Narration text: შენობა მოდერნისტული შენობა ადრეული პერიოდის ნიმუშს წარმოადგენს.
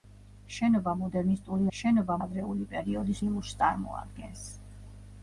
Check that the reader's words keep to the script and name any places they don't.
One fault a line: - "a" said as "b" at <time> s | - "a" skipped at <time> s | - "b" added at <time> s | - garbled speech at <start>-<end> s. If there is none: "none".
none